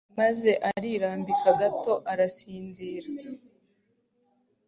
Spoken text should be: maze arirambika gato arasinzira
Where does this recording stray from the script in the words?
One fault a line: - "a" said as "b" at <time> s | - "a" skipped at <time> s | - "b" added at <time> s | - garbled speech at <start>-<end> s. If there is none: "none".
none